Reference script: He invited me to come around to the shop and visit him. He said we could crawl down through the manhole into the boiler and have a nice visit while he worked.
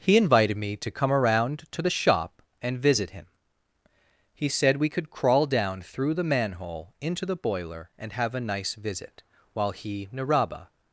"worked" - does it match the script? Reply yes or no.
no